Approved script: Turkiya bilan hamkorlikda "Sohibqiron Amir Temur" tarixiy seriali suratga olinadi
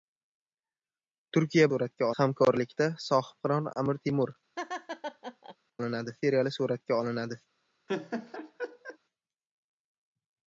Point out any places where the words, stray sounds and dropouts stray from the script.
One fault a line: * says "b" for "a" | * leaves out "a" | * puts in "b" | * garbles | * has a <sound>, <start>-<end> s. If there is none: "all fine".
* says "suratga" for "bilan"
* has a laugh, 4.6-5.6 s
* says "olinadi" for "tarixiy"
* has a laugh, 7.9-9.0 s